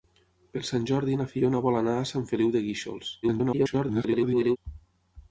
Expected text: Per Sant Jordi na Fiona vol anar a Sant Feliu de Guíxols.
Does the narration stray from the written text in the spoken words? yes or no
yes